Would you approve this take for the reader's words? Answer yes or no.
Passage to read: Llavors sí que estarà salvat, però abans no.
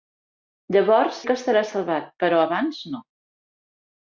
no